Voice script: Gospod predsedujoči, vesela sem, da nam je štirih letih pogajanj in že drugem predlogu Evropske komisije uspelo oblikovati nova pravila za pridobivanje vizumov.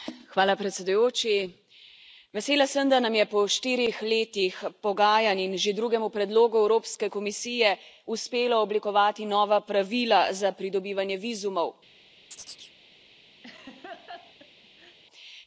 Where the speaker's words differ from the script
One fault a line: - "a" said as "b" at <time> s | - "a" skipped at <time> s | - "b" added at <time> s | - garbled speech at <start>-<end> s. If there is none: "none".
- "po" added at 3.3 s